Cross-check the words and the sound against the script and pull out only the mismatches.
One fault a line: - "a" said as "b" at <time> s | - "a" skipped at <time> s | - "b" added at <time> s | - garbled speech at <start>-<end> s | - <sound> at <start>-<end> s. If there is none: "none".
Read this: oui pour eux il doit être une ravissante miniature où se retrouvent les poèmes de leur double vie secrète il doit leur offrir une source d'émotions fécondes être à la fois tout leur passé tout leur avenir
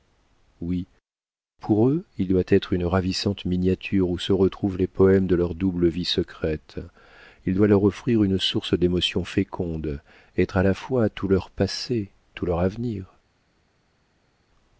none